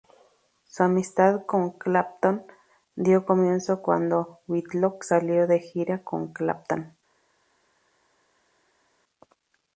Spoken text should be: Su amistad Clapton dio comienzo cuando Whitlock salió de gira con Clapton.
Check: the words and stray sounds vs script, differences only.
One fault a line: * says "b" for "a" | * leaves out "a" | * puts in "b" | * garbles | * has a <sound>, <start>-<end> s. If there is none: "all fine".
* puts in "con"